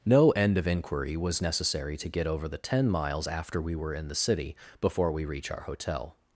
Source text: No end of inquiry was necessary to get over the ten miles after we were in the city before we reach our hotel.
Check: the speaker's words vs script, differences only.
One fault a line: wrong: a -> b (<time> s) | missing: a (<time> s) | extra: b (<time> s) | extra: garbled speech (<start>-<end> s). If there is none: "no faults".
no faults